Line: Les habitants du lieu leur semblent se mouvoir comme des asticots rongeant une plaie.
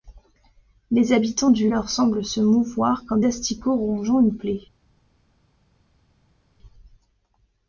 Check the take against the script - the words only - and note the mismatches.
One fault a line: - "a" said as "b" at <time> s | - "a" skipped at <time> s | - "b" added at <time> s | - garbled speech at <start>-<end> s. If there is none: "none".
- "lieu" skipped at 1.7 s
- "des" skipped at 3.2 s